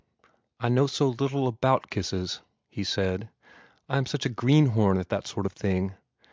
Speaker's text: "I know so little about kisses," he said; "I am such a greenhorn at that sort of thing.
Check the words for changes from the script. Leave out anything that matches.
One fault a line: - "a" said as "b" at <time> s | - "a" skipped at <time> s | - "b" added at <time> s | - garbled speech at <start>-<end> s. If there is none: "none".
none